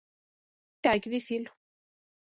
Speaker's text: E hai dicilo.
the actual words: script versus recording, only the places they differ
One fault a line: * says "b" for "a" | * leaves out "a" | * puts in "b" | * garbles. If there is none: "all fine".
* puts in "que"